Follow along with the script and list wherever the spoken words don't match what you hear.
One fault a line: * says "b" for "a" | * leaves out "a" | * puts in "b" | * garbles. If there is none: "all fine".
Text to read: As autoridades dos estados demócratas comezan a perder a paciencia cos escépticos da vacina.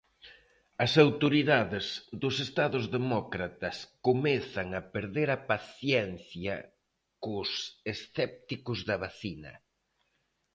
all fine